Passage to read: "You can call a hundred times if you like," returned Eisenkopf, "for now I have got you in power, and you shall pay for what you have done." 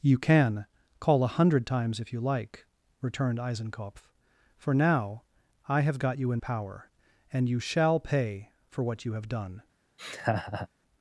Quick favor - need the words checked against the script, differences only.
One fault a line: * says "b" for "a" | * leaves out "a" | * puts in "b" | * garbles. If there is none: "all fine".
all fine